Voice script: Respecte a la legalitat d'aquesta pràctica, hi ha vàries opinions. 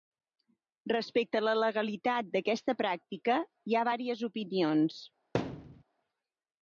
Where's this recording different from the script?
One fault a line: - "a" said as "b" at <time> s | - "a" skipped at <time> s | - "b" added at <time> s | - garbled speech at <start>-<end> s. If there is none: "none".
none